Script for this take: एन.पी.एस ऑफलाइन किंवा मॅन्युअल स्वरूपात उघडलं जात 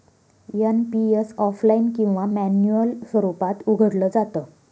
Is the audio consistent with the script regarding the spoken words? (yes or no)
yes